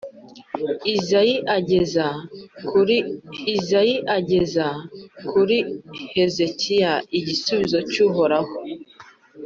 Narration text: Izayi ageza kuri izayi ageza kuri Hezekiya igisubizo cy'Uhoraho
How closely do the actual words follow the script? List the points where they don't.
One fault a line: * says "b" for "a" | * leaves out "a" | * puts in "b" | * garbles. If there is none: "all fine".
all fine